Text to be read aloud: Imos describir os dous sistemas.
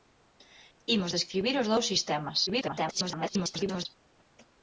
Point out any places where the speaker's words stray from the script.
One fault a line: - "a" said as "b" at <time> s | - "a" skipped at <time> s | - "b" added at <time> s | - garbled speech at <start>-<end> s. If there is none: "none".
- garbled speech at 2.5-3.9 s